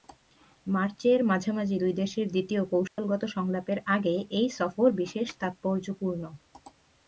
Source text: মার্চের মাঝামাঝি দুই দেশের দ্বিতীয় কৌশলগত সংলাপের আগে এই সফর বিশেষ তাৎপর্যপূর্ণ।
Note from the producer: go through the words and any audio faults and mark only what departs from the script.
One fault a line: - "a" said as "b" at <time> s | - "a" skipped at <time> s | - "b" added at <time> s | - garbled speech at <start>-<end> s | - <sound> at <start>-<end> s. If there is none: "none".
- dropout at 2.9-3.0 s